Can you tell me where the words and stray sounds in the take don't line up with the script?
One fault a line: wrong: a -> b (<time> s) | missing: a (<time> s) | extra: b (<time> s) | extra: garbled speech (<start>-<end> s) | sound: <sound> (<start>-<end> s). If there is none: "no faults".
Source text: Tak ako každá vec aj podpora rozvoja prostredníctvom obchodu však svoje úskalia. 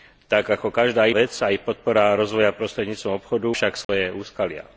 sound: dropout (3.8-3.9 s)